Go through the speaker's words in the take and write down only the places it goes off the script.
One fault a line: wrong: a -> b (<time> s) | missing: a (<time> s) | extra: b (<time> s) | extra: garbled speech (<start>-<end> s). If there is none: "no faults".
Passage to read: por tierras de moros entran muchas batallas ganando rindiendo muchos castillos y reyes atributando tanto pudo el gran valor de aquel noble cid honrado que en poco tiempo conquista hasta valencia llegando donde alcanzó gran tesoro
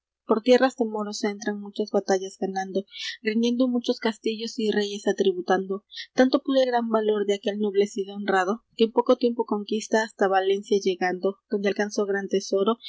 no faults